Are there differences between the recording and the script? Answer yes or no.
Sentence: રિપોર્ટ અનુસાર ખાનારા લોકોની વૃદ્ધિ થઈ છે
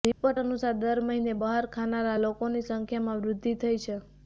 yes